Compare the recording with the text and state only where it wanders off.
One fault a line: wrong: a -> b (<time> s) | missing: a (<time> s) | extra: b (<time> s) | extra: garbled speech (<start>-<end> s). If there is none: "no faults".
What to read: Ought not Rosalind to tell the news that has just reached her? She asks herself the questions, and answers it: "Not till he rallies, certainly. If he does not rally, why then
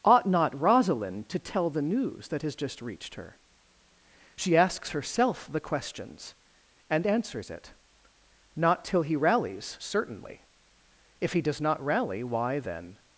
no faults